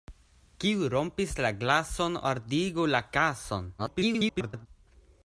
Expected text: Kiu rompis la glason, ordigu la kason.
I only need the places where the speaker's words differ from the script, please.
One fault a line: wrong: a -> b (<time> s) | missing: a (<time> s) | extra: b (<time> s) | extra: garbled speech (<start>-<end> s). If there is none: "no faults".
extra: garbled speech (3.8-4.7 s)